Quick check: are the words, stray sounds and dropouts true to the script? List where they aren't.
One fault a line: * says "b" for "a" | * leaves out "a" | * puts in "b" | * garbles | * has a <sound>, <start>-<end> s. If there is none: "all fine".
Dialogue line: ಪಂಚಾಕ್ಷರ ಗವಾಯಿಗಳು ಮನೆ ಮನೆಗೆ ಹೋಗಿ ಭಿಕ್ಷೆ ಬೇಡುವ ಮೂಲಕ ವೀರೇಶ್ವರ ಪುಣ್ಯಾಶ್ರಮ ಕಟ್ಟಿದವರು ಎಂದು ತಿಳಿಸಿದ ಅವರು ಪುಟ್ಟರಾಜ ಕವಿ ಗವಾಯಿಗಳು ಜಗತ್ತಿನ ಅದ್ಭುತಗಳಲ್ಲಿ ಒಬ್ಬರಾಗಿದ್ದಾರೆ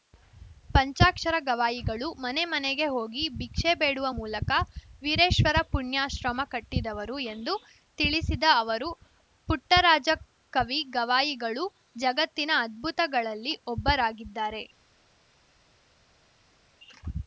all fine